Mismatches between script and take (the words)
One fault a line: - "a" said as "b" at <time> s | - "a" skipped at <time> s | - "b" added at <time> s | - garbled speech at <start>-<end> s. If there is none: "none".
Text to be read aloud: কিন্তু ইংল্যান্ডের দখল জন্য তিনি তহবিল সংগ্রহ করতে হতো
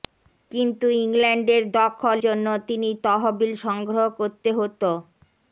none